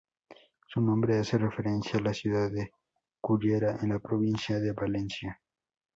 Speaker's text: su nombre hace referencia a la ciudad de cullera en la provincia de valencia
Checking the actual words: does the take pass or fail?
pass